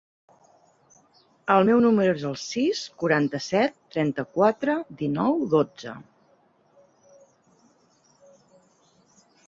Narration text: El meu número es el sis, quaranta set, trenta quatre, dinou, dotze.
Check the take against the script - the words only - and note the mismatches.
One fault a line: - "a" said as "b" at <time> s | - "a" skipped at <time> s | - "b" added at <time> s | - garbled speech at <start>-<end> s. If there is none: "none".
none